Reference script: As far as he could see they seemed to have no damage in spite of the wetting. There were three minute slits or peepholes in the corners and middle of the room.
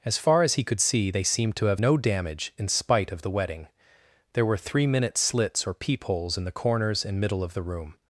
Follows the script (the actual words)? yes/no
yes